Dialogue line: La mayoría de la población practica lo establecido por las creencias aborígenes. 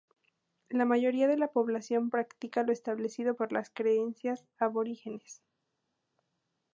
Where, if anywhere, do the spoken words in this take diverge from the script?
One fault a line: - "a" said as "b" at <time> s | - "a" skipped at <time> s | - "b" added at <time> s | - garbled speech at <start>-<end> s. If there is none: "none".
none